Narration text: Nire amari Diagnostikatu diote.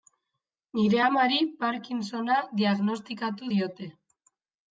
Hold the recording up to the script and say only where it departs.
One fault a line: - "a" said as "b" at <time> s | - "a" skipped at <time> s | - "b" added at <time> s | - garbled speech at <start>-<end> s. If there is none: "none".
- "Parkinsona" added at 1.6 s